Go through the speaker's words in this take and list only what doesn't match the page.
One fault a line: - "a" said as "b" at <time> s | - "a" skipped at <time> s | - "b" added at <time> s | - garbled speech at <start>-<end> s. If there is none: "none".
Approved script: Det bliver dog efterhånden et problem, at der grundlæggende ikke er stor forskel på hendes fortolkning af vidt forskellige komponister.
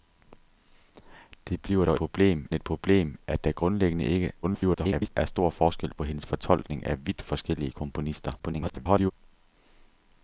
- "efterhånden" said as "problem" at 1.9 s
- garbled speech at 4.4-5.1 s
- garbled speech at 8.4-9.1 s